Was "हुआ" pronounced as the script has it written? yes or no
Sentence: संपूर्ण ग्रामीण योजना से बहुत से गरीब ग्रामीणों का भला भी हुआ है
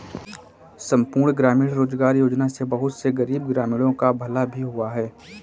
yes